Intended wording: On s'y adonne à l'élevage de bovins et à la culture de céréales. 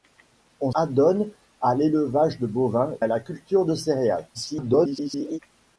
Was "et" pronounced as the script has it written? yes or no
no